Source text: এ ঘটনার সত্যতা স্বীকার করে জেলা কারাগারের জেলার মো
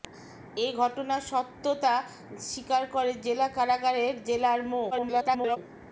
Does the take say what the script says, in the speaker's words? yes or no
no